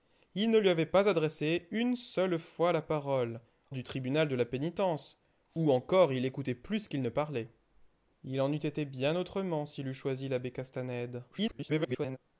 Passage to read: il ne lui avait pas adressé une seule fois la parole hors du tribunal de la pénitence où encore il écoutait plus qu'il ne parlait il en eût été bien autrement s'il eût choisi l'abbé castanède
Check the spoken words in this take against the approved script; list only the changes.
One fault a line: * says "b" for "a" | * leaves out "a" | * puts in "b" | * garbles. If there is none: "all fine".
* leaves out "hors"
* garbles